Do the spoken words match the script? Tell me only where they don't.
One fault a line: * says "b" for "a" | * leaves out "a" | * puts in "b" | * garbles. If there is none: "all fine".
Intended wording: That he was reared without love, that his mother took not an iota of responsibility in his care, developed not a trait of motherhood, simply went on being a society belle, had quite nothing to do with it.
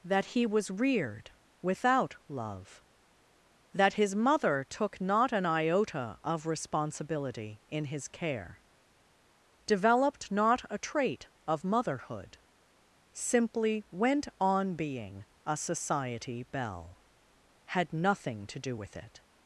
* leaves out "quite"